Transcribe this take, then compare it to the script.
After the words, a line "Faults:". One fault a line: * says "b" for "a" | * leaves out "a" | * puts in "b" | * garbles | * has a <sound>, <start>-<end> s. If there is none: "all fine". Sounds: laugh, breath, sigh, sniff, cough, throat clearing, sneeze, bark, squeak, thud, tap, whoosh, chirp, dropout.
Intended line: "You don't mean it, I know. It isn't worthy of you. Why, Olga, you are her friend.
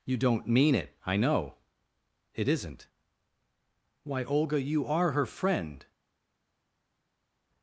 "You don't mean it, I know. It isn't. Why, Olga, you are her friend.
Faults:
* leaves out "worthy of you"